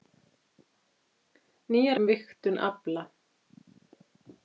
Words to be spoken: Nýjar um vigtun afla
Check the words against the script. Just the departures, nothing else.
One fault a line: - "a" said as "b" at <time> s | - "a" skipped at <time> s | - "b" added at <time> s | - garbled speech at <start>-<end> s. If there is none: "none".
none